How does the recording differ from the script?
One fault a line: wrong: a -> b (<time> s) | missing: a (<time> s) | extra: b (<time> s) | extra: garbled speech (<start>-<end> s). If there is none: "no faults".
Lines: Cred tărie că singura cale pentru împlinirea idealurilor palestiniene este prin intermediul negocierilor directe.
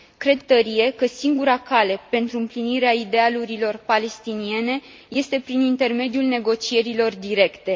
no faults